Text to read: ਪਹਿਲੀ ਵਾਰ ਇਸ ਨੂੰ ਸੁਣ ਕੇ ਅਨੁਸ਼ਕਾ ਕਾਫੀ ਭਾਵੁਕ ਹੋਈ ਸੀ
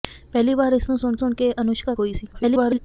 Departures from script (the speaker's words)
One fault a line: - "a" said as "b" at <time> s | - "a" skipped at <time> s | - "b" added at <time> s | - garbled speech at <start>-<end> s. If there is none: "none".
- "ਸੁਣ" added at 1.2 s
- "ਕਾਫੀ ਭਾਵੁਕ" skipped at 1.9 s
- garbled speech at 2.3-2.8 s